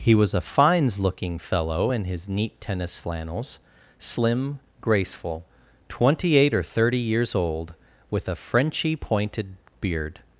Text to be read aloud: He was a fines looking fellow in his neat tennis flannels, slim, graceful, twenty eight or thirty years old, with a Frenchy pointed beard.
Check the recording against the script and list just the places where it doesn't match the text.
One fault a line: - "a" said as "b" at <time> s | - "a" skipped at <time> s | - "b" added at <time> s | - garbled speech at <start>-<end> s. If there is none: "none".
none